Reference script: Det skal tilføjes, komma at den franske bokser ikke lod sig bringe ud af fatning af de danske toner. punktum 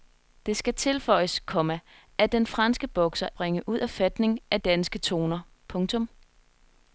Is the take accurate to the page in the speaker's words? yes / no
no